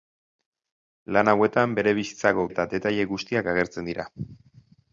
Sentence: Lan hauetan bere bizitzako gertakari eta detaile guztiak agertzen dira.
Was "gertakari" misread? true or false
true